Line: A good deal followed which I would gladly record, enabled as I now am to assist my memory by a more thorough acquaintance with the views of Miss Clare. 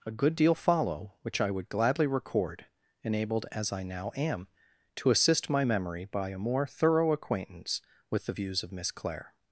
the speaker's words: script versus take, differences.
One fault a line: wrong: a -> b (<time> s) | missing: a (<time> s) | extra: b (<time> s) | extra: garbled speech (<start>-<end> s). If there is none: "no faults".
wrong: followed -> follow (0.6 s)